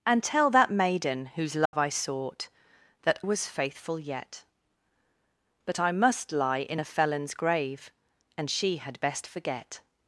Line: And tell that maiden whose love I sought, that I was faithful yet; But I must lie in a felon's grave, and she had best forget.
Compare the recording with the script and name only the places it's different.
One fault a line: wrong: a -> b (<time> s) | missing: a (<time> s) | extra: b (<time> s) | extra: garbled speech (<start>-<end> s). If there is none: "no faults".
missing: I (3.2 s)